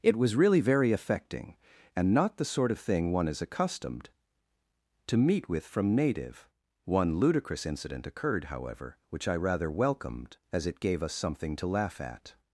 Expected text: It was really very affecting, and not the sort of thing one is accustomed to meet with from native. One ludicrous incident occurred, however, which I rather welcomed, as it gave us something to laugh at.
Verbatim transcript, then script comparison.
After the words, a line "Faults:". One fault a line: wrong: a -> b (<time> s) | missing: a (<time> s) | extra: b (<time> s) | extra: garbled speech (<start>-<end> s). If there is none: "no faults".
It was really very affecting, and not the sort of thing one is accustomed to meet with from native. One ludicrous incident occurred, however, which I rather welcomed, as it gave us something to laugh at.
Faults:
no faults